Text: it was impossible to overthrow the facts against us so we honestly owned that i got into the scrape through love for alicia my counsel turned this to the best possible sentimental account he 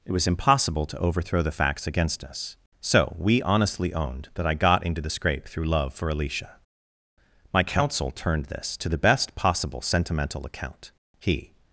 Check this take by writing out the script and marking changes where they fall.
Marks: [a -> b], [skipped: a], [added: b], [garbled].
it was impossible to overthrow the facts against us so we honestly owned that i got into the scrape through love for alicia my counsel turned this to the best possible sentimental account he